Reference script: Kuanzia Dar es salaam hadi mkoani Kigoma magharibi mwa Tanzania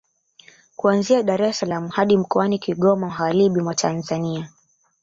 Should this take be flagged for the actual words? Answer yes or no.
no